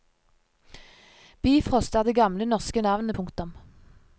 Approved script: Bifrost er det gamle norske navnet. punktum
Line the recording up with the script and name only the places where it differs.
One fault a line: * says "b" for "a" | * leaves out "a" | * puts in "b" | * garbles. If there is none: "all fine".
all fine